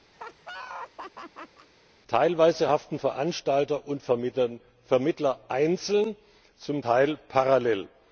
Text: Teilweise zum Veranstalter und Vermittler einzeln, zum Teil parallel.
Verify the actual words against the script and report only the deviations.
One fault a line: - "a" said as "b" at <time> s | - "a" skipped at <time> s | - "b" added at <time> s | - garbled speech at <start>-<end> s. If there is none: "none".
- "zum" said as "haften" at 2.7 s